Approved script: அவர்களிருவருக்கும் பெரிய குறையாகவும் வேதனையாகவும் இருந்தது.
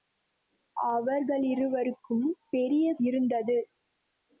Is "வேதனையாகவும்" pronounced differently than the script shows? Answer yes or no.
yes